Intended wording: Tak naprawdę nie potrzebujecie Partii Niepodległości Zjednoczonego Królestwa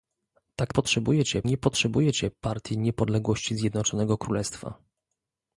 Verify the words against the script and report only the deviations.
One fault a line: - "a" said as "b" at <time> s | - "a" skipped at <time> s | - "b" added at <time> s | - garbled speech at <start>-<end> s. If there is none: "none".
- "naprawdę" said as "potrzebujecie" at 0.7 s